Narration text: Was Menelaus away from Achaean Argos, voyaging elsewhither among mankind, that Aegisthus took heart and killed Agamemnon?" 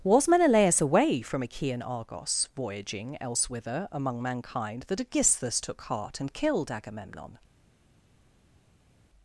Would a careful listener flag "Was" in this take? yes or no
no